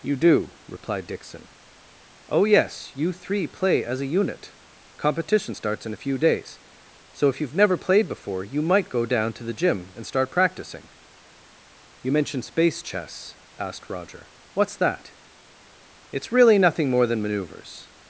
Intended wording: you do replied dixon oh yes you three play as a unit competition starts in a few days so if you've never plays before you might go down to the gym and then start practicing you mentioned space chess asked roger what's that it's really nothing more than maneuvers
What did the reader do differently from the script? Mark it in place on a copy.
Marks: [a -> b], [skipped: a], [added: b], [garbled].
you do replied dixon oh yes you three play as a unit competition starts in a few days so if you've never [plays -> played] before you might go down to the gym and [skipped: then] start practicing you mentioned space chess asked roger what's that it's really nothing more than maneuvers